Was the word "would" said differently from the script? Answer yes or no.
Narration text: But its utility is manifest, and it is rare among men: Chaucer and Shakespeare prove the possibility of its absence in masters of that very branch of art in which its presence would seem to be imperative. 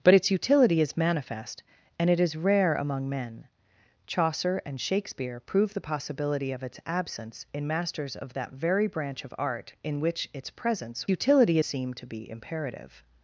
yes